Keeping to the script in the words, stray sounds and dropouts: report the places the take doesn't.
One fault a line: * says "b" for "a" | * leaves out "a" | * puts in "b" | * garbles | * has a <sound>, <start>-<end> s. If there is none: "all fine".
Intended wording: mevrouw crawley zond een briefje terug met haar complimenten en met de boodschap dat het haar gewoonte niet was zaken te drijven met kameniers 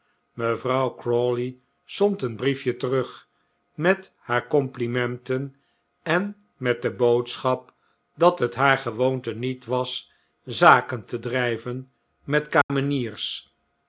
* has a dropout, 12.6-12.7 s